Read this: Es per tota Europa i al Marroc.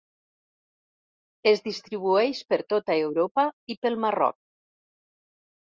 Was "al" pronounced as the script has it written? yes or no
no